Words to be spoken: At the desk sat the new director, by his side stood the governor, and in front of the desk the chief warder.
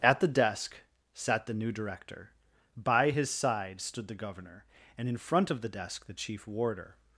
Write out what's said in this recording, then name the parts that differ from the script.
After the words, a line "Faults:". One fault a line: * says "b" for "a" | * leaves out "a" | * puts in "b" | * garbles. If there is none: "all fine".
At the desk sat the new director, by his side stood the governor, and in front of the desk the chief warder.
Faults:
all fine